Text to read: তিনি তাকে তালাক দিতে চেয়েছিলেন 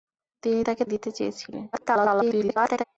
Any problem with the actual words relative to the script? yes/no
yes